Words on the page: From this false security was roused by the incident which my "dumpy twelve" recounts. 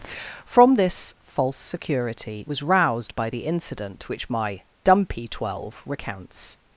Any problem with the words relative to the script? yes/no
no